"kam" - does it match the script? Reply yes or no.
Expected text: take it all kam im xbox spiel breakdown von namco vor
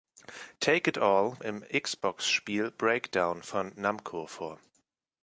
no